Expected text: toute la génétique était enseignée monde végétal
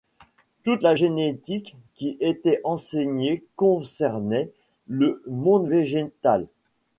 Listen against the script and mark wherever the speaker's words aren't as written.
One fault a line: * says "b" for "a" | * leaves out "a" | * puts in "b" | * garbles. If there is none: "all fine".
* puts in "qui"
* puts in "concernait le"